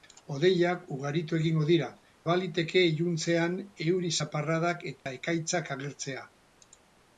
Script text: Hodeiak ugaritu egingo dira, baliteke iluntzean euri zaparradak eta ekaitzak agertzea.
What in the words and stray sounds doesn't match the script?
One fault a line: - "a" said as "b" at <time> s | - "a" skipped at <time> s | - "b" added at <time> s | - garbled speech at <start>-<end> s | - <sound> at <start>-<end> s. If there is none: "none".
- dropout at 5.0-5.1 s